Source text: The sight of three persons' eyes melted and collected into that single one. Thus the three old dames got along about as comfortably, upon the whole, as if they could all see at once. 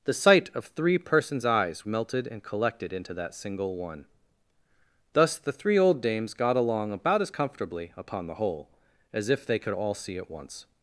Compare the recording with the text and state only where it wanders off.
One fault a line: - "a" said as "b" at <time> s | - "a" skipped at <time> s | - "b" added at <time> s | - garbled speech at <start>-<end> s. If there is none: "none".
none